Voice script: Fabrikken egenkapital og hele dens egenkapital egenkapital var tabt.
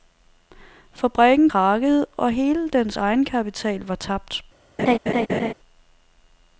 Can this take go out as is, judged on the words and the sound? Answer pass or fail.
fail